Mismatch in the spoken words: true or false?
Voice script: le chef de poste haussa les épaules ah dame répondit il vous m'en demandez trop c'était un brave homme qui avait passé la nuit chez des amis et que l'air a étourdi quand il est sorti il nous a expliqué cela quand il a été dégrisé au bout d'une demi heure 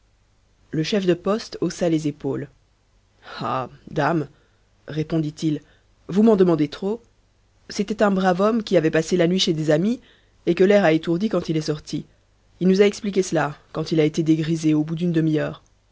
false